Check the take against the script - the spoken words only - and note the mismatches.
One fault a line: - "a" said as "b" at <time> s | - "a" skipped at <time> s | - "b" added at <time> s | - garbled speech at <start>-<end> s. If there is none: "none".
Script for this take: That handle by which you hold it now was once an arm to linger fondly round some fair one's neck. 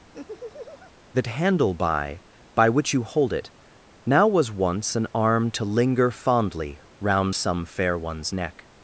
- "by" added at 2.5 s